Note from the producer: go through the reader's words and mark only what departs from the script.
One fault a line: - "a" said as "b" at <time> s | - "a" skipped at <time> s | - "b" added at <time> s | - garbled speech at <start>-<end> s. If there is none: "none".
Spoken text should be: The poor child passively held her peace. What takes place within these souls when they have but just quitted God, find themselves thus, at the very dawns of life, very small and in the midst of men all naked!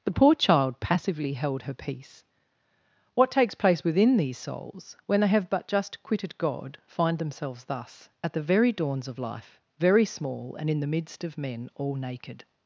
none